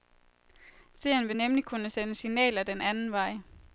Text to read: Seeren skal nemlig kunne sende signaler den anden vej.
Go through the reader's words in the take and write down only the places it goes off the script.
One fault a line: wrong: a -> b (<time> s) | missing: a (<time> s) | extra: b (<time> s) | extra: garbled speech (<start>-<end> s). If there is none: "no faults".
wrong: skal -> vil (1.3 s)